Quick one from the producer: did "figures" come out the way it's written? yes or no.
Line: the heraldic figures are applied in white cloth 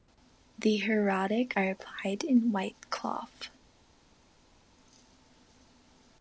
no